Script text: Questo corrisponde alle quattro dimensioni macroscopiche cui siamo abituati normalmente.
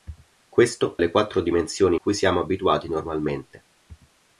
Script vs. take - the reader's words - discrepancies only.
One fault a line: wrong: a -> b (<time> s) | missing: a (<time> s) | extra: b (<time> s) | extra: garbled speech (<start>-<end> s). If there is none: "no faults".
missing: corrisponde (1.0 s)
missing: macroscopiche (2.0 s)